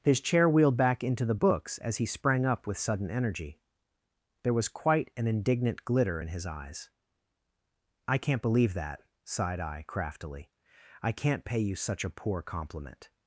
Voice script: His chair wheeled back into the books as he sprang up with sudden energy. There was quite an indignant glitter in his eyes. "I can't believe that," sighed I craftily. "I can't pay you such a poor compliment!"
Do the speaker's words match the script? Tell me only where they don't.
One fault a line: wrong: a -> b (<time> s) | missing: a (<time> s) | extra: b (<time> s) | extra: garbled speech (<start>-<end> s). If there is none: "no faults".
no faults